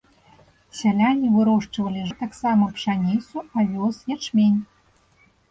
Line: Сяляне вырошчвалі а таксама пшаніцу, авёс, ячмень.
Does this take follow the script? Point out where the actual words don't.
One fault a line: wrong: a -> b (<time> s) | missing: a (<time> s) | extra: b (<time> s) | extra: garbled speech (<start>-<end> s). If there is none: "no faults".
no faults